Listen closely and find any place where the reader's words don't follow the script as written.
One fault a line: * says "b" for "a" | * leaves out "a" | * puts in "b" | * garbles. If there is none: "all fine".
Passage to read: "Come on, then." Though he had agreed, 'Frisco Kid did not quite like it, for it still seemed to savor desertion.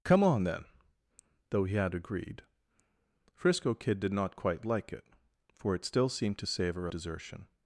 all fine